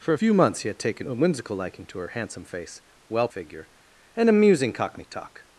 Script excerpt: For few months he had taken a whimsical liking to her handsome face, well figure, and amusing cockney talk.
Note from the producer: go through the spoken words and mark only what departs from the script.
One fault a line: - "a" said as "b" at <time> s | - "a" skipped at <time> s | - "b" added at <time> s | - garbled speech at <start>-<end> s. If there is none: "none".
none